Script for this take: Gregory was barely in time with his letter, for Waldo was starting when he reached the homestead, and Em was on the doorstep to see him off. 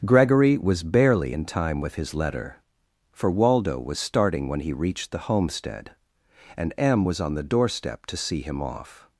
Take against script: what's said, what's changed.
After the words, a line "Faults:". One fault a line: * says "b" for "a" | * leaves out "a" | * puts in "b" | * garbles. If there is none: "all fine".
Gregory was barely in time with his letter, for Waldo was starting when he reached the homestead, and Em was on the doorstep to see him off.
Faults:
all fine